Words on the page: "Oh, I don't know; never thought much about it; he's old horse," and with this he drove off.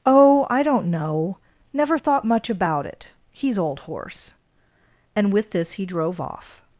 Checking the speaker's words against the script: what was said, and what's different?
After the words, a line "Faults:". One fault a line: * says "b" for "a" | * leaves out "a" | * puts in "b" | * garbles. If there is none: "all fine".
"Oh, I don't know; never thought much about it; he's old horse," and with this he drove off.
Faults:
all fine